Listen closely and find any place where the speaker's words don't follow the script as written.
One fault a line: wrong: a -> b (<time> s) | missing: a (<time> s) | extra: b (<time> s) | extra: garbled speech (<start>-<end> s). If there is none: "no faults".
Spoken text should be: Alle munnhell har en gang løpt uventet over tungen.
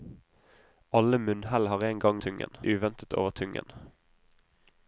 wrong: løpt -> tungen (2.1 s)